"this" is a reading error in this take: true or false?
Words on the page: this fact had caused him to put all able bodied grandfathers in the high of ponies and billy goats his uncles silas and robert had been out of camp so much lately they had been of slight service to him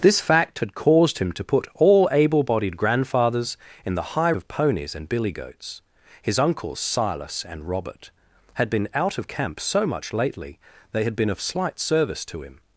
false